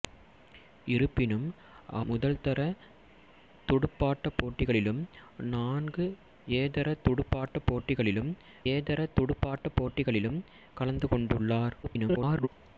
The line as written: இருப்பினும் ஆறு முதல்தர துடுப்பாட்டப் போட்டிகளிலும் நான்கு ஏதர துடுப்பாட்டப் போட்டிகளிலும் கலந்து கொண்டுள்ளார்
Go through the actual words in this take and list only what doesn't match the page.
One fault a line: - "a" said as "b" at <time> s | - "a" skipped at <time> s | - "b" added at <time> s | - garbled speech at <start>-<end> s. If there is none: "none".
- "ஆறு" skipped at 1.4 s
- "ஏதர துடுப்பாட்டப் போட்டிகளிலும்" added at 8.7 s
- garbled speech at 11.8-12.5 s